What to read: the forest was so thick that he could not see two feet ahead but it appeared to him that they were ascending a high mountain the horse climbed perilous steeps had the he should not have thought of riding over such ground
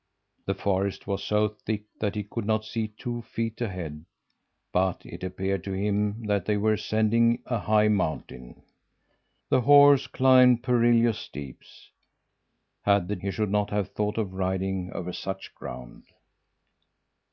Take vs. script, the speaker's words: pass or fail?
pass